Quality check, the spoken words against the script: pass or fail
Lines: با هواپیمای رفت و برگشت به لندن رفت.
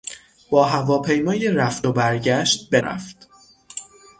fail